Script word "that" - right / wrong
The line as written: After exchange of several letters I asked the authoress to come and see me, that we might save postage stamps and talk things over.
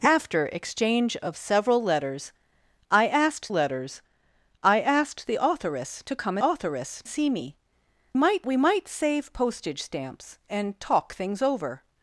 wrong